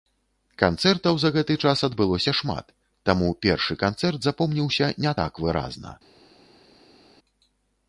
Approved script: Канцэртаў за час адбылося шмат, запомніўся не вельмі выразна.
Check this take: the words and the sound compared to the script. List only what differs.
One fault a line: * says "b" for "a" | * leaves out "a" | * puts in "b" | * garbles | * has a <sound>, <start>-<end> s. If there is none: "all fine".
* puts in "гэты"
* puts in "таму першы канцэрт"
* says "так" for "вельмі"